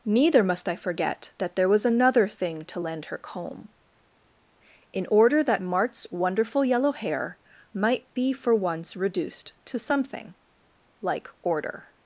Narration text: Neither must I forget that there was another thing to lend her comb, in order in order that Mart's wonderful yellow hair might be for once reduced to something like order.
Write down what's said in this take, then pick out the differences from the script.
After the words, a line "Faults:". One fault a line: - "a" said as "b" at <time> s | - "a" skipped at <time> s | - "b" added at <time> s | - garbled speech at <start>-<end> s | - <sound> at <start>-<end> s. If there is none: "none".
Neither must I forget that there was another thing to lend her comb, in order that Mart's wonderful yellow hair might be for once reduced to something like order.
Faults:
- "in order" skipped at 5.4 s